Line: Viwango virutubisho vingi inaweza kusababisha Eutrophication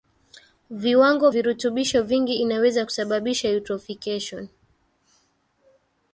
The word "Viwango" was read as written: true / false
true